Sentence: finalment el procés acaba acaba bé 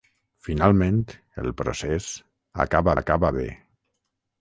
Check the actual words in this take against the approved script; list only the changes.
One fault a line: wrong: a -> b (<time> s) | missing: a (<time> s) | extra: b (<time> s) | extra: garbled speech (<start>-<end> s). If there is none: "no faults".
no faults